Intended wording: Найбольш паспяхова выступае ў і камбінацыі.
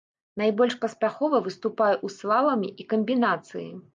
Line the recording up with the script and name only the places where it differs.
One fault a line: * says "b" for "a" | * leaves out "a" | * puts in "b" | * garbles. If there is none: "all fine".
* puts in "слаламе"